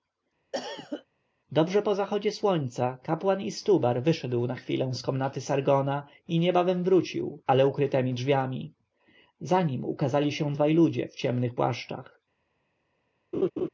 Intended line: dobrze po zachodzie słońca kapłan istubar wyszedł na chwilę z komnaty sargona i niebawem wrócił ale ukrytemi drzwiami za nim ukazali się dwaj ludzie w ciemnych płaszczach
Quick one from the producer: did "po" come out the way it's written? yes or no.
yes